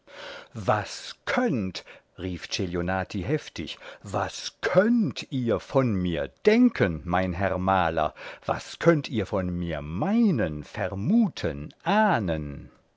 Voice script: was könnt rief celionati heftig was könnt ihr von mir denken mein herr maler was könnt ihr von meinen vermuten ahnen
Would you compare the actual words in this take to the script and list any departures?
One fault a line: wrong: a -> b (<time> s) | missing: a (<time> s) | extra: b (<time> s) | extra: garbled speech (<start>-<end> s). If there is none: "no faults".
extra: mir (9.6 s)